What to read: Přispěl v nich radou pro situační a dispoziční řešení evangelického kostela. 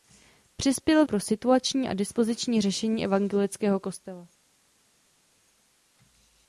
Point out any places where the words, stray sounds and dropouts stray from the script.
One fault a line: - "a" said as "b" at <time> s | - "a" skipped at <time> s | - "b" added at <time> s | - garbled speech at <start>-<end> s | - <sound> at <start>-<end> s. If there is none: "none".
- "nich radou" skipped at 1.1 s